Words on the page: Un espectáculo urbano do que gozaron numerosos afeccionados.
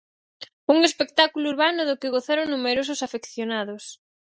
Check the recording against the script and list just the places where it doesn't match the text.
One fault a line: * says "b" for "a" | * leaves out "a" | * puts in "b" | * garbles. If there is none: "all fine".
all fine